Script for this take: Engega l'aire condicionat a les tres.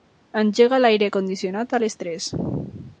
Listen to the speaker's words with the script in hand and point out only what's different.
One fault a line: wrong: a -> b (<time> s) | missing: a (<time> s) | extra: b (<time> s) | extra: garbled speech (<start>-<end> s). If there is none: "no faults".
no faults